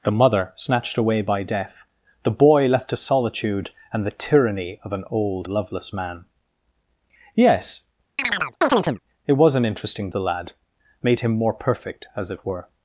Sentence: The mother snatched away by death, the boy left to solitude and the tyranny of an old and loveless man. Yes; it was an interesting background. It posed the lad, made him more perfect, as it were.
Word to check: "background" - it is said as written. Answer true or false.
false